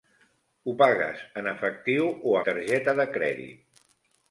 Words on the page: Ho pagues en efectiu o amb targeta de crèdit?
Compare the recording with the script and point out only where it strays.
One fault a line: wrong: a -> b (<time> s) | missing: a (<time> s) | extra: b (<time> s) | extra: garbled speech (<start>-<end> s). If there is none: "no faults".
missing: amb (2.4 s)